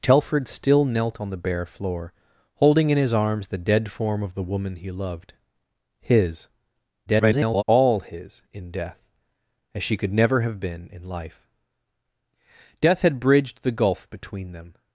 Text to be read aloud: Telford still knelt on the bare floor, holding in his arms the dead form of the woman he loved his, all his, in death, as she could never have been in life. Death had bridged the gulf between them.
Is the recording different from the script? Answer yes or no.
yes